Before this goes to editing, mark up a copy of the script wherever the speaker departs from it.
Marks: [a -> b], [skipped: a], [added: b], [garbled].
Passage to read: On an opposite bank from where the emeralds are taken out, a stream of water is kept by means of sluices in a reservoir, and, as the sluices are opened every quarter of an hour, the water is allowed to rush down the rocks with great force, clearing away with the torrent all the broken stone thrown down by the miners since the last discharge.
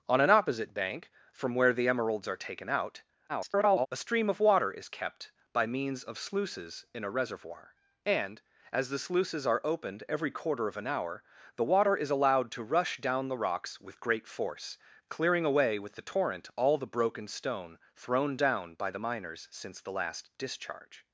On an opposite bank from where the emeralds are taken out, [garbled] a stream of water is kept by means of sluices in a reservoir, and, as the sluices are opened every quarter of an hour, the water is allowed to rush down the rocks with great force, clearing away with the torrent all the broken stone thrown down by the miners since the last discharge.